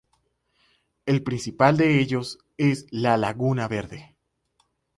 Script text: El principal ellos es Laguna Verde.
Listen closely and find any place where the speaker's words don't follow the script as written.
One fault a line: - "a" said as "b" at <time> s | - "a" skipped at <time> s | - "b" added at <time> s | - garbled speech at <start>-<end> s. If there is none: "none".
- "de" added at 1.8 s
- "la" added at 2.9 s